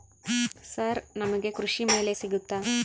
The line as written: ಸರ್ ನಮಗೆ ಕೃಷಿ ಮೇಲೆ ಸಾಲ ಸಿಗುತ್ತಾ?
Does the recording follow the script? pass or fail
fail